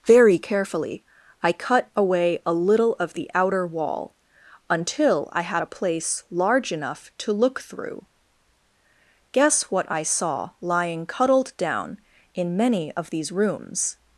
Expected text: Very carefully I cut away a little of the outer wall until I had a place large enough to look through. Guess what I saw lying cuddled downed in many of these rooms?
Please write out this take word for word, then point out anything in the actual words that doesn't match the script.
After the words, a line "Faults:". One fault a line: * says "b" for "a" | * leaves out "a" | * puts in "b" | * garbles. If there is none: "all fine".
Very carefully I cut away a little of the outer wall until I had a place large enough to look through. Guess what I saw lying cuddled down in many of these rooms?
Faults:
* says "down" for "downed"